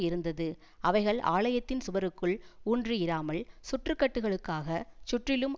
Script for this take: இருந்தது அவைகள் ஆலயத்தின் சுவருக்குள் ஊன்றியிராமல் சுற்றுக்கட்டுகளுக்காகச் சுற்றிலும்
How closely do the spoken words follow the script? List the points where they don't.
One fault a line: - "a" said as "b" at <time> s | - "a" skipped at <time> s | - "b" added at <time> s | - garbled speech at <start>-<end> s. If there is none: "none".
none